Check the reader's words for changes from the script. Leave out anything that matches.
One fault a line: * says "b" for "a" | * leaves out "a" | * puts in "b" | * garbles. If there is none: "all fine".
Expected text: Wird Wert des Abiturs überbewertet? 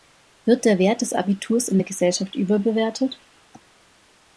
* puts in "der"
* puts in "in der Gesellschaft"